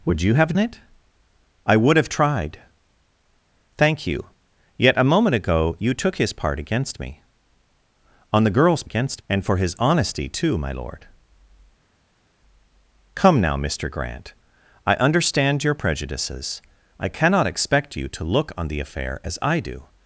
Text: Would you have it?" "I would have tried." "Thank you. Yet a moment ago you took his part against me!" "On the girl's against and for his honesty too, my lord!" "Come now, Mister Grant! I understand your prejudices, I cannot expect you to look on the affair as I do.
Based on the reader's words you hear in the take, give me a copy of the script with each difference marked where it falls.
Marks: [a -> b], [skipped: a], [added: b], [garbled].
Would you have it?" "I would have tried." "Thank you. Yet a moment ago you took his part against me!" "On the girl's against and for his honesty too, my lord!" "Come now, Mister Grant! I understand your prejudices, I cannot expect you to look on the affair as I do.